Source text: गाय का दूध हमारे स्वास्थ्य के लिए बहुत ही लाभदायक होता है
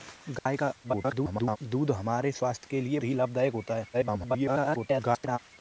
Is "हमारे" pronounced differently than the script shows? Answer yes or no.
no